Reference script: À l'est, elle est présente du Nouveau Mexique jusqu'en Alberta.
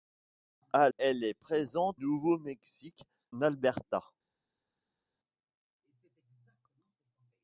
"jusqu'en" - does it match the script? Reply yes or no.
no